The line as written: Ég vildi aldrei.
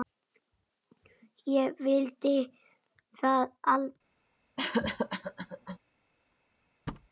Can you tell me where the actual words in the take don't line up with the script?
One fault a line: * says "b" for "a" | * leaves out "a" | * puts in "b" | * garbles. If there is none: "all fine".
* puts in "það"